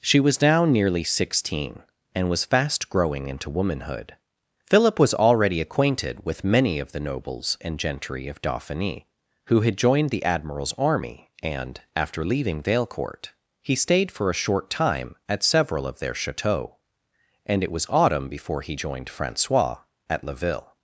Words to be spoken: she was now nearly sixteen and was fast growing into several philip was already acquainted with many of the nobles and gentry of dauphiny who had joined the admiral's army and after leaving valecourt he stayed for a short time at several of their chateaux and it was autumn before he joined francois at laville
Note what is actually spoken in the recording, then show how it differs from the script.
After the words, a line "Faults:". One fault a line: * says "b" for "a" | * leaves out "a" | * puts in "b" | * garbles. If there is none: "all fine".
she was now nearly sixteen and was fast growing into womanhood philip was already acquainted with many of the nobles and gentry of dauphiny who had joined the admiral's army and after leaving valecourt he stayed for a short time at several of their chateaux and it was autumn before he joined francois at laville
Faults:
* says "womanhood" for "several"